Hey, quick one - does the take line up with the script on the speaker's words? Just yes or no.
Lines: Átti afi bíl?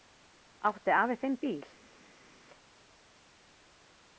no